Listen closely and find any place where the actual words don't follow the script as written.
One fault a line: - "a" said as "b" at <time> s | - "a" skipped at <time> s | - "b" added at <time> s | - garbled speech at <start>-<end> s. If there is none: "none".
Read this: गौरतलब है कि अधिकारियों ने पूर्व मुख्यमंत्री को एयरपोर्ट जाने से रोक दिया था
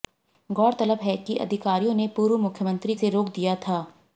- "को एयरपोर्ट जाने" skipped at 3.0 s